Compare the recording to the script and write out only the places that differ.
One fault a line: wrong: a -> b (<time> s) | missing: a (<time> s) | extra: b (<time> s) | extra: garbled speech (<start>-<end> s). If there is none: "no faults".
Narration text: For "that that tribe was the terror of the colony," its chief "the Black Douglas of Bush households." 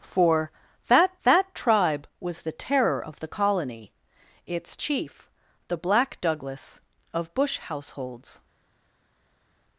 no faults